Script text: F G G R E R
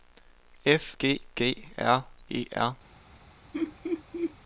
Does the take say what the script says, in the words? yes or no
yes